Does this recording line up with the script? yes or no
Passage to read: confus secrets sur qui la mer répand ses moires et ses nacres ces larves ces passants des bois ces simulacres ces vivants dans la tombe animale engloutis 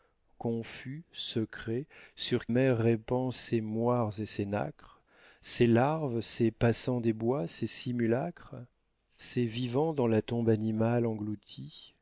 no